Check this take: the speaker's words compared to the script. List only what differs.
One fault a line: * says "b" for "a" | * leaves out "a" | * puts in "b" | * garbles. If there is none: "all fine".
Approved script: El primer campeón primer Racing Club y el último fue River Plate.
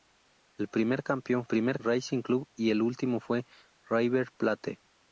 all fine